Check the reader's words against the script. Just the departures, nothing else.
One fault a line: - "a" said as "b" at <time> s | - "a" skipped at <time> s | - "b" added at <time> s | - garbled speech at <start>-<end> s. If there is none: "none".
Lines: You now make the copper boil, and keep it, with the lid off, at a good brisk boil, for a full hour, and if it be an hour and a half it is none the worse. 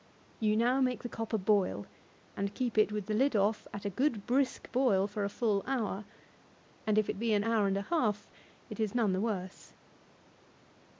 none